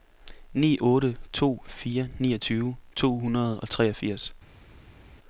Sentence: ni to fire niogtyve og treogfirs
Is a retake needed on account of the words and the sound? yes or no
yes